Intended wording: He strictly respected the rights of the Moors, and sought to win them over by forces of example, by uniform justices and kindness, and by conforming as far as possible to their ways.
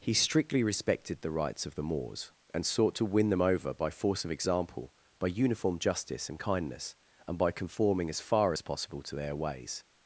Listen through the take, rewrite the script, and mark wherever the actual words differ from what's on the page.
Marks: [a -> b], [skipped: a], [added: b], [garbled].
He strictly respected the rights of the Moors, and sought to win them over by [forces -> force] of example, by uniform [justices -> justice] and kindness, and by conforming as far as possible to their ways.